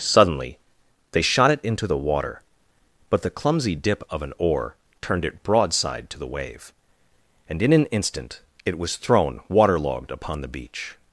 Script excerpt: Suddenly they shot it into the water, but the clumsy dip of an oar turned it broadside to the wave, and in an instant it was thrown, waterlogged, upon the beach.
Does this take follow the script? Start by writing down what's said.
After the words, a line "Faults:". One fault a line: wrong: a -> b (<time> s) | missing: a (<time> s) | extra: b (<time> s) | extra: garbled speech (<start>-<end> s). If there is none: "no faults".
Suddenly they shot it into the water, but the clumsy dip of an oar turned it broadside to the wave, and in an instant it was thrown, waterlogged, upon the beach.
Faults:
no faults